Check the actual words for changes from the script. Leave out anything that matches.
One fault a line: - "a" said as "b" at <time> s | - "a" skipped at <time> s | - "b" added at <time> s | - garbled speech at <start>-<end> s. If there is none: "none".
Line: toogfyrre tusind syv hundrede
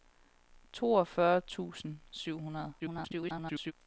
- garbled speech at 2.8-3.7 s